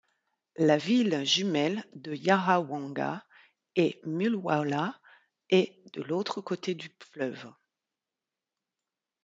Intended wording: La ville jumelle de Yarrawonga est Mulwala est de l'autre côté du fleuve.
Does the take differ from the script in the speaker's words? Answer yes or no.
no